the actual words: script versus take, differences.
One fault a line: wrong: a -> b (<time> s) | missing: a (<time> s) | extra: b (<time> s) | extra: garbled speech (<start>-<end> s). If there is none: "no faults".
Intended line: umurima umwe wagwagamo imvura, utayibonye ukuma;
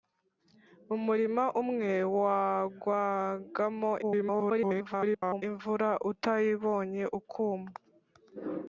extra: garbled speech (4.0-5.4 s)